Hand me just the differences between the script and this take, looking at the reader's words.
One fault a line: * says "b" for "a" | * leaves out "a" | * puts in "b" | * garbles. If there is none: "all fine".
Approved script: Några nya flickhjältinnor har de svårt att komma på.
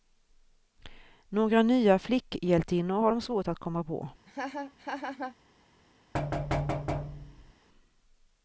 all fine